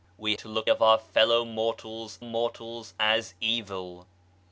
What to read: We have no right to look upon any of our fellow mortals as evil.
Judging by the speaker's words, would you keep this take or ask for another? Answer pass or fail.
fail